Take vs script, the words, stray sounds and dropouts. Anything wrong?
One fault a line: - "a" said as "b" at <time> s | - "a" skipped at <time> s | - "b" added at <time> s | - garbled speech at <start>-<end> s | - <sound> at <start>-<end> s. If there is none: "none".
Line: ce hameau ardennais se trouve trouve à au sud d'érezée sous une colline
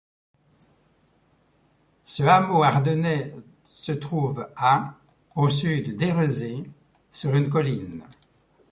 - "trouve" skipped at 4.5 s
- "sous" said as "sur" at 7.1 s